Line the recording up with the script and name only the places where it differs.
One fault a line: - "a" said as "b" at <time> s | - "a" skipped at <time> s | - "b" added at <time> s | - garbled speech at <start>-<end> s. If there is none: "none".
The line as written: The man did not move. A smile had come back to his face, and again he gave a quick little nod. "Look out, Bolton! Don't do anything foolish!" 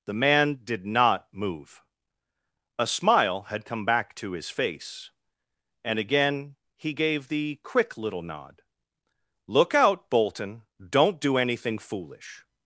- "a" said as "the" at 7.3 s